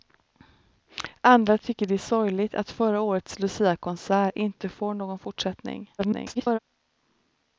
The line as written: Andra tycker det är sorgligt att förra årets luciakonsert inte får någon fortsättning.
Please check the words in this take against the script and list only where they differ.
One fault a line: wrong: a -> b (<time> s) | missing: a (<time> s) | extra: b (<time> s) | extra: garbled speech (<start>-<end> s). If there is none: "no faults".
extra: garbled speech (6.0-6.6 s)